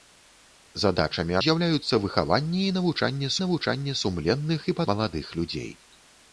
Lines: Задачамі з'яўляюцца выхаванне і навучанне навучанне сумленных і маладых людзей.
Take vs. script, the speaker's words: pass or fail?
pass